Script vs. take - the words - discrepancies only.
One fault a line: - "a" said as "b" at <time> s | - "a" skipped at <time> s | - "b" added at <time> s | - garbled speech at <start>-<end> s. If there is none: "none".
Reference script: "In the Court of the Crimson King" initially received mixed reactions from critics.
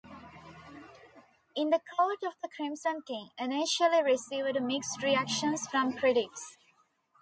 none